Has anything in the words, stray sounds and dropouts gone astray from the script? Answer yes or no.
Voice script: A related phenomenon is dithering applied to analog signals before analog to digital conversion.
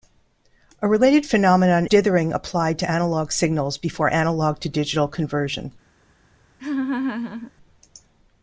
yes